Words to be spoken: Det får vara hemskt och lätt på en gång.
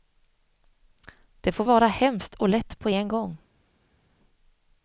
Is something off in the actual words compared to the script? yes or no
no